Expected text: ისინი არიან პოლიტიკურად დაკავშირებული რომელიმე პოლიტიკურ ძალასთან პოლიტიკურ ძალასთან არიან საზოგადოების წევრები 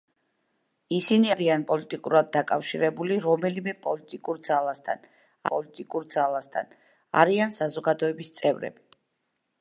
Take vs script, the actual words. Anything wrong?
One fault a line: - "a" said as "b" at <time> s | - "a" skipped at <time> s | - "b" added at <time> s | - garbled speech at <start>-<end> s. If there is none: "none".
none